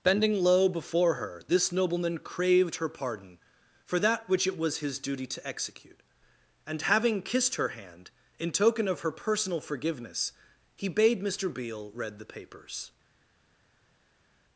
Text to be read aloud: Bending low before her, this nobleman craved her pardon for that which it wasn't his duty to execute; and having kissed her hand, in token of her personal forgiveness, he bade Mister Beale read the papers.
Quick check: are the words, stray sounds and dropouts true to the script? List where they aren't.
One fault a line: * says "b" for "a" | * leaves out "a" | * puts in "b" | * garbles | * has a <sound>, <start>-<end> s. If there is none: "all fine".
* says "was" for "wasn't"